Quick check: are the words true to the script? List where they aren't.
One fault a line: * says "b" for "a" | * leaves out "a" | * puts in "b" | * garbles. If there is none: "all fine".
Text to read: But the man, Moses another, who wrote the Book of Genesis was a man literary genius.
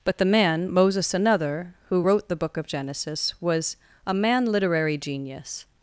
all fine